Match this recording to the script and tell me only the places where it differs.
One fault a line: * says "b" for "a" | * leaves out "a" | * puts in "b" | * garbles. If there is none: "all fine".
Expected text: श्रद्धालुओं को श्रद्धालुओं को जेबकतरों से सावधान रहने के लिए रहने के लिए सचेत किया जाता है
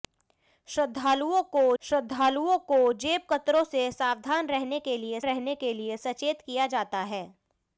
all fine